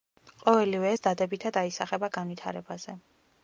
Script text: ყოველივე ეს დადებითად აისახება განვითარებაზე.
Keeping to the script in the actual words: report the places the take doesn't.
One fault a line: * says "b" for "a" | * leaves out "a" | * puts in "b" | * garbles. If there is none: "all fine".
all fine